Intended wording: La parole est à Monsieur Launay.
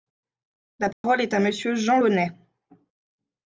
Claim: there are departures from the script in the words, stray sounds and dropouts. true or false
true